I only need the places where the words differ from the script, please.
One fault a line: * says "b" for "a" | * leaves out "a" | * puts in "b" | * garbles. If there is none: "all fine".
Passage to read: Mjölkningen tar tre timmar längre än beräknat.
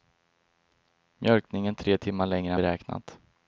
* leaves out "tar"
* leaves out "än"